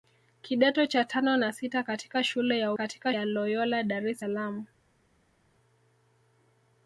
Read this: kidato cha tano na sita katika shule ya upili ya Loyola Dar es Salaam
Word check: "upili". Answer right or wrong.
wrong